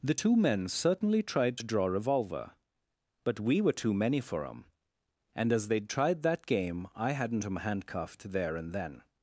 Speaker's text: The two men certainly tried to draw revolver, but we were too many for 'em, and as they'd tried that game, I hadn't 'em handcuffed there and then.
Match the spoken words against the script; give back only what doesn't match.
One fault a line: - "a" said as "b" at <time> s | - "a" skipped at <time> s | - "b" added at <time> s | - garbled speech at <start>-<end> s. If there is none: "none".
none